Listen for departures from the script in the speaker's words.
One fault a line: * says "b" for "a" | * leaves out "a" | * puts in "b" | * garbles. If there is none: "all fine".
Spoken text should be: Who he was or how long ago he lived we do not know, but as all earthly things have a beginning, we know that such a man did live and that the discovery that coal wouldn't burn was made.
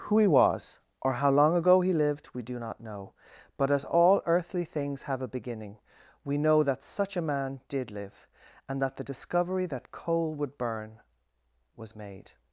* says "would" for "wouldn't"